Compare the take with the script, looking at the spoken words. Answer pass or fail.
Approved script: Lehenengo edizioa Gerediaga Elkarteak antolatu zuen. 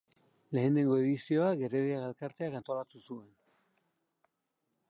pass